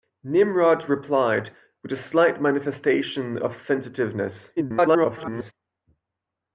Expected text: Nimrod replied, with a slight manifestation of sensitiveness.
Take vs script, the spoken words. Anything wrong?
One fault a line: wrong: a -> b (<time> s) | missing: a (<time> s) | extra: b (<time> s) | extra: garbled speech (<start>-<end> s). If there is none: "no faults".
extra: garbled speech (4.6-5.5 s)